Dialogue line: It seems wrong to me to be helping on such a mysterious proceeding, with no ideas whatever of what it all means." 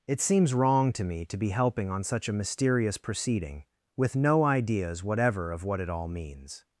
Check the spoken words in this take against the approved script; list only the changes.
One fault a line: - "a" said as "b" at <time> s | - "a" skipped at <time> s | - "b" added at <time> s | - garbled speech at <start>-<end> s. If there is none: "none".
none